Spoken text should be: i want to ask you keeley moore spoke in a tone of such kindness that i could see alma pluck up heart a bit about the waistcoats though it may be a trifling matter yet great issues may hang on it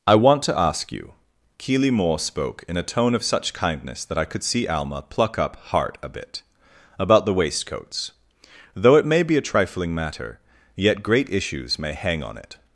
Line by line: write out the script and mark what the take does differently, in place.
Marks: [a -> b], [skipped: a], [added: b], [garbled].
i want to ask you keeley moore spoke in a tone of such kindness that i could see alma pluck up heart a bit about the waistcoats though it may be a trifling matter yet great issues may hang on it